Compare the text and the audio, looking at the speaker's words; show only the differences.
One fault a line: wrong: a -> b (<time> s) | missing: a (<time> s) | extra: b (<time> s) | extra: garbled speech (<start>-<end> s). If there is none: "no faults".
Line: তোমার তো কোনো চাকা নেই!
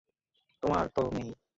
missing: কোনো চাকা (1.0 s)